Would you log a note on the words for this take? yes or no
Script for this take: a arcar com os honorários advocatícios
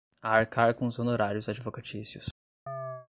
no